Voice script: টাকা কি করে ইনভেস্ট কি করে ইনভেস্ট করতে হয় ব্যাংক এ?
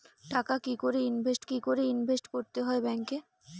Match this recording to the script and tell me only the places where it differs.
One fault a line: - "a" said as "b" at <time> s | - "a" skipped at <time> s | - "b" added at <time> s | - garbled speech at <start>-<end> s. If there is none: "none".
none